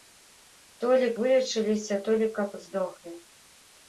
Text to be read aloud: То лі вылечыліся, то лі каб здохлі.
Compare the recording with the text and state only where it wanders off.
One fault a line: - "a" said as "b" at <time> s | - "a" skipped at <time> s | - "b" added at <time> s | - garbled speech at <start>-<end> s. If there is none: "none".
none